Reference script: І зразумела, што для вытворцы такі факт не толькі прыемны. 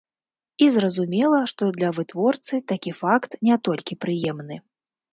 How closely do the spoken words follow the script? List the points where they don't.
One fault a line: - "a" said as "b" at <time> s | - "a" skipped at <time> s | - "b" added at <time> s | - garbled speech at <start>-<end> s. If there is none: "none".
none